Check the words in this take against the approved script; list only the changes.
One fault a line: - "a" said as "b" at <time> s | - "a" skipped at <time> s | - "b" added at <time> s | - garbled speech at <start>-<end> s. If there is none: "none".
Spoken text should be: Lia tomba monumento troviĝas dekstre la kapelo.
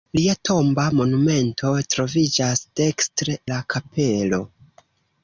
none